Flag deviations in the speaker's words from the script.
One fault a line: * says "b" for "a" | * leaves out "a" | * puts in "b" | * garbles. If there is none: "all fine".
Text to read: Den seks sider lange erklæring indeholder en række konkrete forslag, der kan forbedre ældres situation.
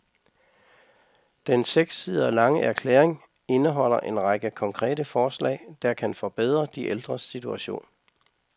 * puts in "de"